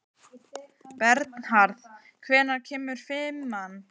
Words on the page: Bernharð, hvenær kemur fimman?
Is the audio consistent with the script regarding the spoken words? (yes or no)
yes